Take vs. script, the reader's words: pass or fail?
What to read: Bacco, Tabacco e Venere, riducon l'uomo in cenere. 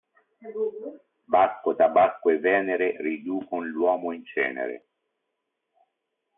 pass